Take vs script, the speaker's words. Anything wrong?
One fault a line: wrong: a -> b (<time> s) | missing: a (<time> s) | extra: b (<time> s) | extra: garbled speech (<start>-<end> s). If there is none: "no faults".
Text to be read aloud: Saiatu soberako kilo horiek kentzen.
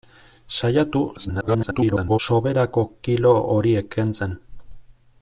extra: garbled speech (1.2-2.2 s)